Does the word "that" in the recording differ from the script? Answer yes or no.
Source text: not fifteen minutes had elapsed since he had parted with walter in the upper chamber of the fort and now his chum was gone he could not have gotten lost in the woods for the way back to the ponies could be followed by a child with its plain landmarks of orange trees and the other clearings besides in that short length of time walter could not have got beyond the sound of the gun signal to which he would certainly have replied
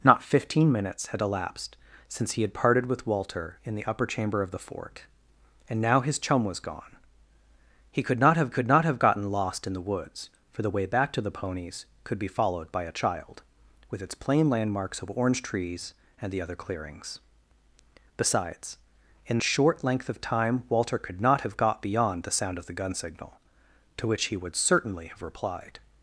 yes